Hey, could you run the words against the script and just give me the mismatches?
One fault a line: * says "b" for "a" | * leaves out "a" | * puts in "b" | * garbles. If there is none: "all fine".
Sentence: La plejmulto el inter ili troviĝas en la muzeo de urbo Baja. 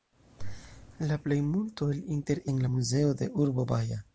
* leaves out "ili troviĝas"